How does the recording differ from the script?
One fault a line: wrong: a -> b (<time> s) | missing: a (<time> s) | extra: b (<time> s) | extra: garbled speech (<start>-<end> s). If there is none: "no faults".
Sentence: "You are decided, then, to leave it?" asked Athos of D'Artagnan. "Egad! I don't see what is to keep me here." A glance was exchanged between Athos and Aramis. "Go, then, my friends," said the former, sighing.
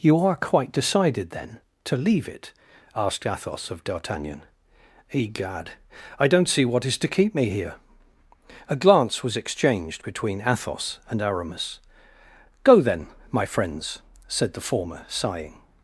extra: quite (0.3 s)